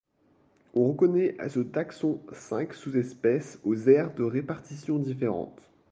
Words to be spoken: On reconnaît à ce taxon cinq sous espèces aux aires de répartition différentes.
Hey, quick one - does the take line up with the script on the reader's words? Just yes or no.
yes